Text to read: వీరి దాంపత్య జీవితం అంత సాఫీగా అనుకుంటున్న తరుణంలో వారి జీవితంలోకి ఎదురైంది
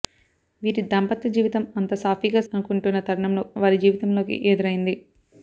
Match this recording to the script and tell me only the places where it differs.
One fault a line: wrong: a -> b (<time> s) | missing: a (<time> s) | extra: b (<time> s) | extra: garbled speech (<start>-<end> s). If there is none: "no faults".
no faults